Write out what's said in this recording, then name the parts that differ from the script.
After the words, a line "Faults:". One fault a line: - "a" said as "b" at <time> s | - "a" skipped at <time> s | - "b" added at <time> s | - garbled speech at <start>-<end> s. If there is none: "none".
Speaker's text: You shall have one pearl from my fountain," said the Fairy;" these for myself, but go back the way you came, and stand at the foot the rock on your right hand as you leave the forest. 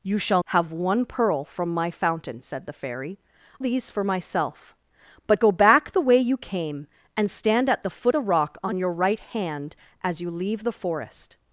You shall have one pearl from my fountain," said the Fairy;" these for myself, but go back the way you came, and stand at the foot the rock on your right hand as you leave the forest.
Faults:
none